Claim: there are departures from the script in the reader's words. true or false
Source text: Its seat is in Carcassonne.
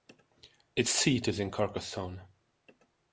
false